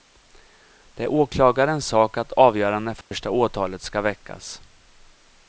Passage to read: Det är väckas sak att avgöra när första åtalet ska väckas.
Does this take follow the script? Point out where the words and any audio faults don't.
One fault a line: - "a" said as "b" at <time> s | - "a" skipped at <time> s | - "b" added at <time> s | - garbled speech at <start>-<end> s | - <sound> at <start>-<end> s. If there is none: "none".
- "väckas" said as "åklagarens" at 1.1 s
- dropout at 3.0-3.1 s